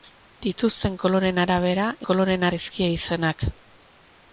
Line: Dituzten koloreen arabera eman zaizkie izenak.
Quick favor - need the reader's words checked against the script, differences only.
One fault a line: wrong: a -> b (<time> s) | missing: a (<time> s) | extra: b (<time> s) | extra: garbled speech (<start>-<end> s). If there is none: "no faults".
wrong: eman -> koloreen (2.1 s)